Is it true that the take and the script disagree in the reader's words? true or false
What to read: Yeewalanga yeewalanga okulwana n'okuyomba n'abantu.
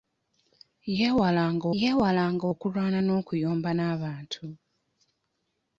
false